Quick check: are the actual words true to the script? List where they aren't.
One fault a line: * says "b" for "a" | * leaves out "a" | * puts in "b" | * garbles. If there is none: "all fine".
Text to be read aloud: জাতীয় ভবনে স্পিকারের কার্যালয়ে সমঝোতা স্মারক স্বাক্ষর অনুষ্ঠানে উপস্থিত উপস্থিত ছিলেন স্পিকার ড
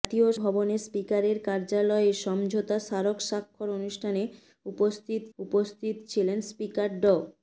all fine